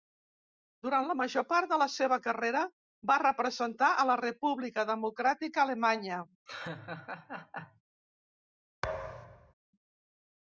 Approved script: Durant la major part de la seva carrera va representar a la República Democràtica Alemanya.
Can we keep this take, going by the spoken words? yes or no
yes